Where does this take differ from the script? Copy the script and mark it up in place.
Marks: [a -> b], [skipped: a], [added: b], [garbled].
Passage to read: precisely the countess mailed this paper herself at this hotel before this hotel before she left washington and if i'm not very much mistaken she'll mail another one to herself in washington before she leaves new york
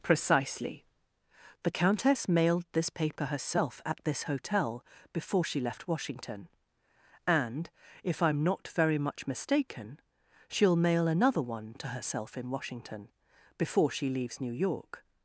precisely the countess mailed this paper herself at this hotel before [skipped: this hotel before] she left washington and if i'm not very much mistaken she'll mail another one to herself in washington before she leaves new york